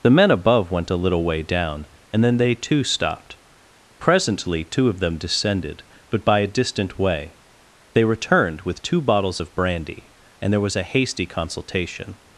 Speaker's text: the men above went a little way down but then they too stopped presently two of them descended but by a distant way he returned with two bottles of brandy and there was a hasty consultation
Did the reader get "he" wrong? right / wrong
wrong